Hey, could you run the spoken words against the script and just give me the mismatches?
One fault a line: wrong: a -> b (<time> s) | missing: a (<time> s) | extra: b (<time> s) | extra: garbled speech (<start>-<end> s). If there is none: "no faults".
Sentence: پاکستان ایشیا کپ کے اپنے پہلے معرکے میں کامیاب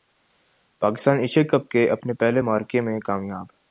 no faults